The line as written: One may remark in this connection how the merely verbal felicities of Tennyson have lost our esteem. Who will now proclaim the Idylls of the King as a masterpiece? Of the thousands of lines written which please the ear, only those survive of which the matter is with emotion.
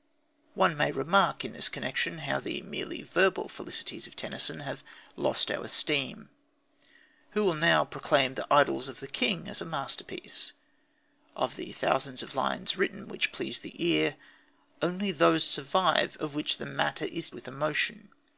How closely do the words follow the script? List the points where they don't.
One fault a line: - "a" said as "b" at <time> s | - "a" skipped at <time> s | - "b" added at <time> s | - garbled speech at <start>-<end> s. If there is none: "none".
none